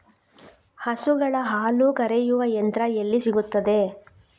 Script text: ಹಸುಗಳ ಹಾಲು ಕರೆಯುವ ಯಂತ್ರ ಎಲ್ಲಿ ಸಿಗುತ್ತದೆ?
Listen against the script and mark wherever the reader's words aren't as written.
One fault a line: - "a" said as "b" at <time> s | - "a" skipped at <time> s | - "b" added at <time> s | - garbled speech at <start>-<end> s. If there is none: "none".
none